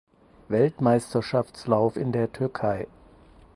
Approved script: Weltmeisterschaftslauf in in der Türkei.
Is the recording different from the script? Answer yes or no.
yes